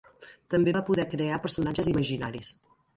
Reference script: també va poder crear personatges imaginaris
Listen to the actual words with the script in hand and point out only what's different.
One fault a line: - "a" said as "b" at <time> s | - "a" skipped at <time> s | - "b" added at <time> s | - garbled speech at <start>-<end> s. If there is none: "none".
none